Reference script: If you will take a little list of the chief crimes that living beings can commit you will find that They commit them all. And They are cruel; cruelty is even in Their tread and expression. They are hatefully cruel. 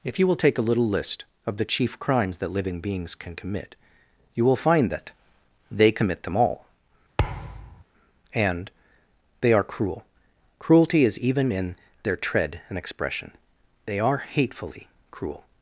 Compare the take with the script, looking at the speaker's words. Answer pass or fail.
pass